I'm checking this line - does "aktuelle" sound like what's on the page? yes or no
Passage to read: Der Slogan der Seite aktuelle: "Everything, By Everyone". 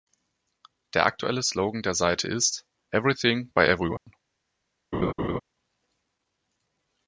no